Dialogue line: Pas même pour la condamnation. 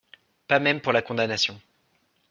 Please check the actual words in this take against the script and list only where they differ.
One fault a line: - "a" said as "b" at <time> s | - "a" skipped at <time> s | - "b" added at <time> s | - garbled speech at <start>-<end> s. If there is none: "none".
none